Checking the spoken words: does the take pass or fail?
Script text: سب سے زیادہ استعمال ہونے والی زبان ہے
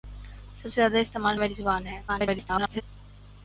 fail